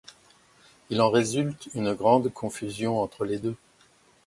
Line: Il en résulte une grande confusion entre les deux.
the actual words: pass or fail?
pass